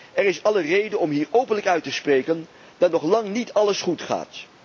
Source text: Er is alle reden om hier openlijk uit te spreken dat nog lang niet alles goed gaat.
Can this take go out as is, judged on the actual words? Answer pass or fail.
pass